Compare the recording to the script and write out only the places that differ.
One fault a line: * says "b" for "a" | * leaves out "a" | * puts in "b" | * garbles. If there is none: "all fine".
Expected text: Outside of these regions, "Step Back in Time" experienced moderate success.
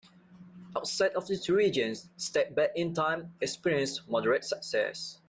all fine